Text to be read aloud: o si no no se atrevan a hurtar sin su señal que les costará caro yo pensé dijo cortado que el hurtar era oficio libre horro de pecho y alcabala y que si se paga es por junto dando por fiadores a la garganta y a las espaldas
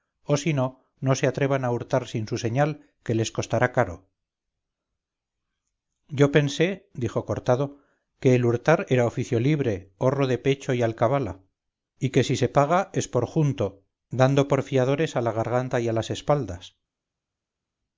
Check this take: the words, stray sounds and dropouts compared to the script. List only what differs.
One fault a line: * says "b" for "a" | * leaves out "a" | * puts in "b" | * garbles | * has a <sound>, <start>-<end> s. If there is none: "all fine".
all fine